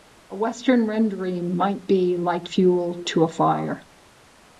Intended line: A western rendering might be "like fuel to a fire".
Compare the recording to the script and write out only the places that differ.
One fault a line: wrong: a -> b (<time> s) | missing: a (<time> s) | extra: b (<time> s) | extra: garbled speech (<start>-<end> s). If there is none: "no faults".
no faults